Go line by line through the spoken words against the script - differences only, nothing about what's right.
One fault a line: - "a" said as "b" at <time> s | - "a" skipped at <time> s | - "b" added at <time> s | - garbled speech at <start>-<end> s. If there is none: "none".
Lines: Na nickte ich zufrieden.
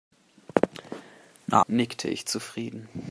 none